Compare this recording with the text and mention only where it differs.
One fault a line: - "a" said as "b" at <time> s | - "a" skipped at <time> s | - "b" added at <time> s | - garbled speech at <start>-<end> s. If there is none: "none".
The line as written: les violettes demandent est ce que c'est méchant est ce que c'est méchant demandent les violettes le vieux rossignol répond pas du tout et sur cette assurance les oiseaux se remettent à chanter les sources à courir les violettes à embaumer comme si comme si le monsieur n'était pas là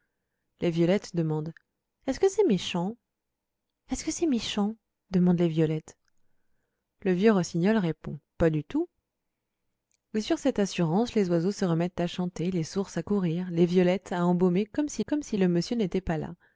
none